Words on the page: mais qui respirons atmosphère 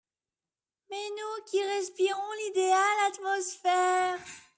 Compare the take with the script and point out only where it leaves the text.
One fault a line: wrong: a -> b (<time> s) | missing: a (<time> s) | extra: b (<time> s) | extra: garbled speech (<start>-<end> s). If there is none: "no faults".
extra: nous (1.1 s)
extra: l'idéale (2.5 s)